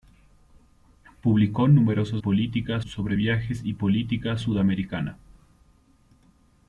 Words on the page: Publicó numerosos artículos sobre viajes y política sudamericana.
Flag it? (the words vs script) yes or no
yes